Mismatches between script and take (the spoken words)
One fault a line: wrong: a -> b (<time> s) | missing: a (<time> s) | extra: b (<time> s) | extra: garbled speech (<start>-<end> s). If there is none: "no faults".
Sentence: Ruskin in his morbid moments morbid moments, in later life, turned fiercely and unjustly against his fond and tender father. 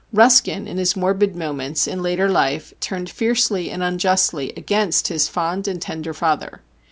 missing: morbid moments (1.9 s)